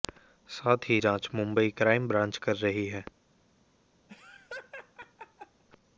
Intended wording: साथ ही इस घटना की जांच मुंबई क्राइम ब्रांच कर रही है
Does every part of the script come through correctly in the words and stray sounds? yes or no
no